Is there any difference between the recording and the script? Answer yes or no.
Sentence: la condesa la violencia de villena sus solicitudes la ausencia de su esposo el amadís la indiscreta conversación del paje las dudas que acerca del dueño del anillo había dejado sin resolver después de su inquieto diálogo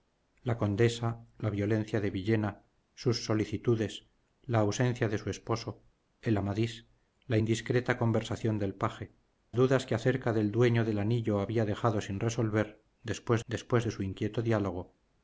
yes